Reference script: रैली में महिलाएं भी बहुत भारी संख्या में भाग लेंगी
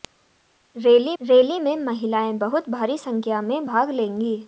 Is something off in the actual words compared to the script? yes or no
yes